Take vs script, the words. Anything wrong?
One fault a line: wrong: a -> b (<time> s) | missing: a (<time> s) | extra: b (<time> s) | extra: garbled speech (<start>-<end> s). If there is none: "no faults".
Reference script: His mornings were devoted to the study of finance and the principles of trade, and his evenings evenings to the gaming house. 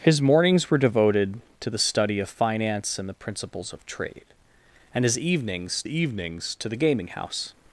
no faults